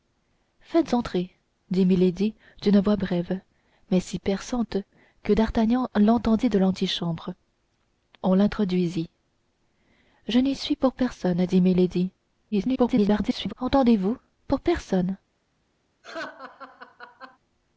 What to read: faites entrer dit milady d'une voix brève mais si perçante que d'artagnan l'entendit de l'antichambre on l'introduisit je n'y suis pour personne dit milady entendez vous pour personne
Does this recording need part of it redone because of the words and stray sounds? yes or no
yes